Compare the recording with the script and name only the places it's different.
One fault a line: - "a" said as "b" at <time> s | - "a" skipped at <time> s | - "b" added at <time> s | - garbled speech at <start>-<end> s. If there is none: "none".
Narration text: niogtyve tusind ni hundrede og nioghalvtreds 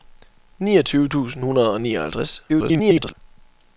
- "ni" skipped at 1.4 s
- garbled speech at 2.5-3.1 s